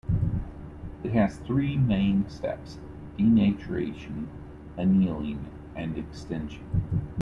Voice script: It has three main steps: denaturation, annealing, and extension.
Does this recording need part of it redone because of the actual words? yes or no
no